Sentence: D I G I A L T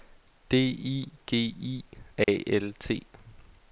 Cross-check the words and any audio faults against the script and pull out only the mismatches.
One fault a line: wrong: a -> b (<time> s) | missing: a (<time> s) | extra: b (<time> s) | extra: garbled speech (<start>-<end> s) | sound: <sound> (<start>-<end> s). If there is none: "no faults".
sound: dropout (2.2-2.3 s)